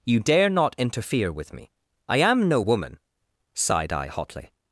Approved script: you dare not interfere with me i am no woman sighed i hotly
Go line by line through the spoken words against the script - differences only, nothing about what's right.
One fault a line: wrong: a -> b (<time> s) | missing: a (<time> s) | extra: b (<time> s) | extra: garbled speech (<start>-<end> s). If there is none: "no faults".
no faults